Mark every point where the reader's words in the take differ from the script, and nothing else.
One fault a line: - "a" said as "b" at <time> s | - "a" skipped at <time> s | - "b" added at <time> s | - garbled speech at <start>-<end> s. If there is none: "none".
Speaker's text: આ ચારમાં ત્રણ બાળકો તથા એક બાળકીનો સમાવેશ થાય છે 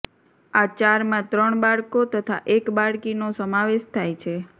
none